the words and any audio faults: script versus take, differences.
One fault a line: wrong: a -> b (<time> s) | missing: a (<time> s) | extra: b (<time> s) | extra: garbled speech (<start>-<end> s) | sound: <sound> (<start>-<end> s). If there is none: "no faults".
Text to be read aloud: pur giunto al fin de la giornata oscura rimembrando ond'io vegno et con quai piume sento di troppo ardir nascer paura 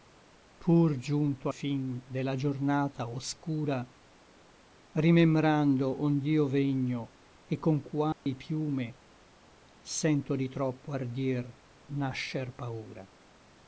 missing: al (1.5 s)
sound: dropout (8.1-8.3 s)